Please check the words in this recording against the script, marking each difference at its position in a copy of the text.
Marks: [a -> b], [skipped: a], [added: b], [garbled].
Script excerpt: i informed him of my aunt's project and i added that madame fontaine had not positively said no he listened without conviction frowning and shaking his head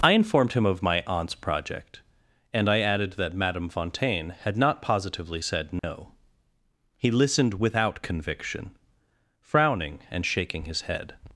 i informed him of my aunt's project and i added that madame fontaine had not positively said no he listened without conviction frowning and shaking his head